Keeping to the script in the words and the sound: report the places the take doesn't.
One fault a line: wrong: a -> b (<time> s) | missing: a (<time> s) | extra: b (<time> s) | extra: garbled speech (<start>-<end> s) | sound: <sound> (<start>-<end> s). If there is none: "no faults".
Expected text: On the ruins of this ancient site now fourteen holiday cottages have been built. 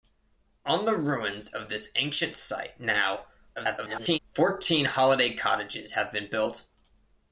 extra: garbled speech (3.5-4.2 s)